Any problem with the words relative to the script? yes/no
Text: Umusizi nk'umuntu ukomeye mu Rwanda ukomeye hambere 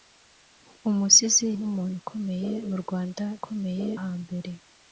no